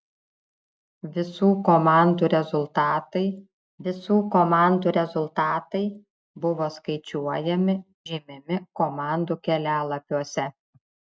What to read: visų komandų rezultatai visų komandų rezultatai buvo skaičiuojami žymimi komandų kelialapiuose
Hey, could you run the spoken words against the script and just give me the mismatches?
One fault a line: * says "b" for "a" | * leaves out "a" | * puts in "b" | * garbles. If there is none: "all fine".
all fine